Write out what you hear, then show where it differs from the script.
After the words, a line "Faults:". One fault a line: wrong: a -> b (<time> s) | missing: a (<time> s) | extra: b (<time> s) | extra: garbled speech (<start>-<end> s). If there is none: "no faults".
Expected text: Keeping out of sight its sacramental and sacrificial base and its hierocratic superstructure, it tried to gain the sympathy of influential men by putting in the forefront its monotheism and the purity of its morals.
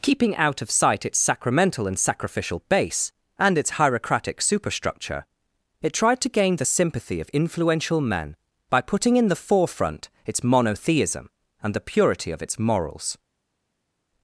Keeping out of sight its sacramental and sacrificial base and its hierocratic superstructure, it tried to gain the sympathy of influential men by putting in the forefront its monotheism and the purity of its morals.
Faults:
no faults